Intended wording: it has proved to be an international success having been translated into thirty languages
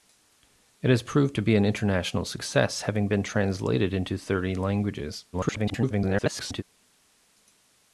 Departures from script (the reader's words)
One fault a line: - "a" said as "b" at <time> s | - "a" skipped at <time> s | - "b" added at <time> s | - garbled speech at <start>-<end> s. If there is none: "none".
- garbled speech at 5.3-6.6 s